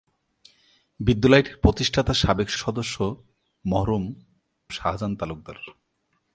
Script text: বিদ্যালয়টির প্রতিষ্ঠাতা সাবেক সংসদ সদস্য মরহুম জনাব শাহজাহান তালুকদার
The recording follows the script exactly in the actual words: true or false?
false